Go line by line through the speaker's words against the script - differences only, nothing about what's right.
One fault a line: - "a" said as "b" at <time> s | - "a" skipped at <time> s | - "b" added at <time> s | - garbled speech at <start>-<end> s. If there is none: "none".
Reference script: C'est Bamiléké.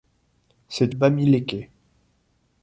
none